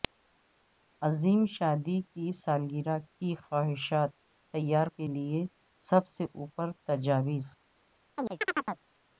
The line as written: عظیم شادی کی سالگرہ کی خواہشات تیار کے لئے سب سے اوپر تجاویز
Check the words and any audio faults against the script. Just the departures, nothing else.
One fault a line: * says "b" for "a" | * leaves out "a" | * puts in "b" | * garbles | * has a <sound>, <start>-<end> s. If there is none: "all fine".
* has a chirp, 8.2-8.8 s